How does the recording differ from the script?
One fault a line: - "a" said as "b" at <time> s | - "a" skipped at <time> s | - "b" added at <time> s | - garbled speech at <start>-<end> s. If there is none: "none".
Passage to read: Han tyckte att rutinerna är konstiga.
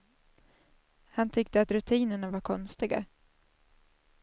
- "är" said as "var" at 2.3 s